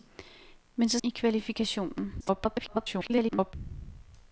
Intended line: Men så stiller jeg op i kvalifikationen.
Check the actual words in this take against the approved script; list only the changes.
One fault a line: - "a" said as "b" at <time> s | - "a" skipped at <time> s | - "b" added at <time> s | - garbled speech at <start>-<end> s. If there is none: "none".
- "stiller jeg op" skipped at 1.0 s
- garbled speech at 2.2-3.5 s